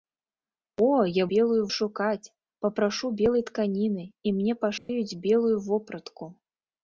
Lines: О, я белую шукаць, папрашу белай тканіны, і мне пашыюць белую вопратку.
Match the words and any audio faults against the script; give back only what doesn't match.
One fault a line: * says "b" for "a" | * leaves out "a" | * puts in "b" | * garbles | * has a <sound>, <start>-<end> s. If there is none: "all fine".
* has a dropout, 4.8-4.9 s